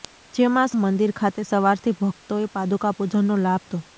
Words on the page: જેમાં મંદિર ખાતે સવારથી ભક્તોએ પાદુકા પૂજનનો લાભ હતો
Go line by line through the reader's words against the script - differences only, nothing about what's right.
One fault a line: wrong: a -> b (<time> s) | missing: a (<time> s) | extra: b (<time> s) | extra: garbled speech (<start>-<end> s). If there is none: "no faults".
no faults